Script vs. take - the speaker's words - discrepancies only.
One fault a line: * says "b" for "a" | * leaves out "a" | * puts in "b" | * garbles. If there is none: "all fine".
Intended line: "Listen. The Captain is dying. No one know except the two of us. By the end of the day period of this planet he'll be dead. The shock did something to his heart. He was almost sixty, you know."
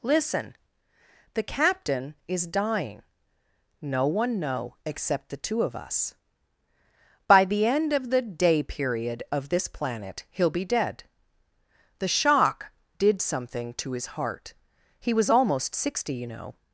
all fine